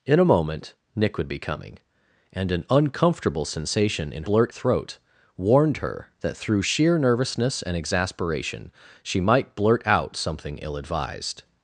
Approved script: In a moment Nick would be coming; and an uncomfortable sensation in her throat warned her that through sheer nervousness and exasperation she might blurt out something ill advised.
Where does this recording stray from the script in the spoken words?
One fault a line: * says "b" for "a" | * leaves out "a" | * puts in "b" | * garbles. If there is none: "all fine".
* says "blurt" for "her"